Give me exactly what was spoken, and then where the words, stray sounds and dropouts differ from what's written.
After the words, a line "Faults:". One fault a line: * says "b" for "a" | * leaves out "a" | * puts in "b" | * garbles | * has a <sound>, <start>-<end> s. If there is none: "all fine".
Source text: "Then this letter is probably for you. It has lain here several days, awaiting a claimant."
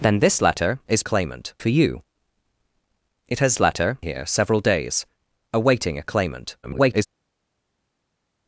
"Then this letter is claimant for you. It has letter here several days, awaiting a claimant." [garbled]
Faults:
* says "claimant" for "probably"
* says "letter" for "lain"
* garbles